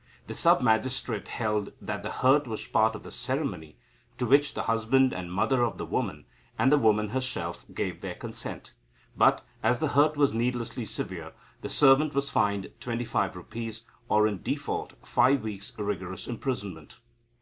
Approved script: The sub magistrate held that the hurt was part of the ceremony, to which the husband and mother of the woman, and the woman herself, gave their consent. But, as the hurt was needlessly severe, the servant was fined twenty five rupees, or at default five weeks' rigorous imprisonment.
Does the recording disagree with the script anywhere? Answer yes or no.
yes